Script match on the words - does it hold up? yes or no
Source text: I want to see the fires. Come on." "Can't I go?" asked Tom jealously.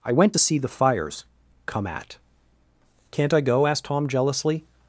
no